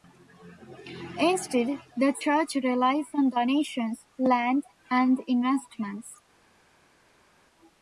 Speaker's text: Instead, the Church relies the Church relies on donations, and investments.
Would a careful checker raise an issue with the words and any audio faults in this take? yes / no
yes